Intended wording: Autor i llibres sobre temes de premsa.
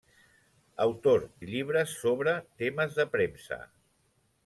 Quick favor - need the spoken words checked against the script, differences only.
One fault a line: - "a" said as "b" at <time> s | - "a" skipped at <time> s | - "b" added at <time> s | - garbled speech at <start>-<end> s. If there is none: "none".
none